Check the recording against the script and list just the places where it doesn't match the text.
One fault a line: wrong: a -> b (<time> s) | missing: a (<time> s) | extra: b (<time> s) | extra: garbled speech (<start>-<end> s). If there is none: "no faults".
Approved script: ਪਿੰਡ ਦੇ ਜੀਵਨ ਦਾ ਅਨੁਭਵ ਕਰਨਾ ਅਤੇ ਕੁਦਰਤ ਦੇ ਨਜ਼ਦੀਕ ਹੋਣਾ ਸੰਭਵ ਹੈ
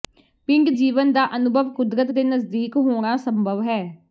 missing: ਦੇ (0.7 s)
missing: ਕਰਨਾ ਅਤੇ (1.7 s)